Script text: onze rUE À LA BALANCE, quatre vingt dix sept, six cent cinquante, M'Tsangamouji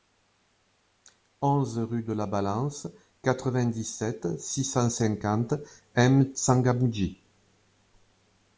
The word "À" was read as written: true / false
false